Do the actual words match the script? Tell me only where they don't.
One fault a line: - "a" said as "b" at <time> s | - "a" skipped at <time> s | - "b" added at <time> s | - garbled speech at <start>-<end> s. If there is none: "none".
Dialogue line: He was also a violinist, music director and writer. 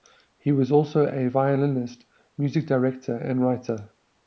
none